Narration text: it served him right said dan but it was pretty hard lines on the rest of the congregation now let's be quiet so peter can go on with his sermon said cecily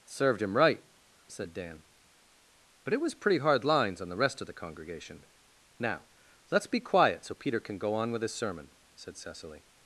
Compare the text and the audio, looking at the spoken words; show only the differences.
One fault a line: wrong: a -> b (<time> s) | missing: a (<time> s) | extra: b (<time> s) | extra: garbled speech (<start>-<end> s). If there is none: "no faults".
missing: it (0.1 s)